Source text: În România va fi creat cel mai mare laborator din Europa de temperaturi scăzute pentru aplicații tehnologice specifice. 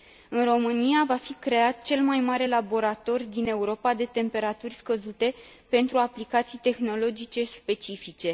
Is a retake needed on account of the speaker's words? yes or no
no